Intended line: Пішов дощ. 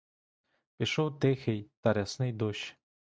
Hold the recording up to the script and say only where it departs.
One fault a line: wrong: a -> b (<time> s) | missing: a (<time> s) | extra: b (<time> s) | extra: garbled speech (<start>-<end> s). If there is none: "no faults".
extra: тихий та рясний (1.2 s)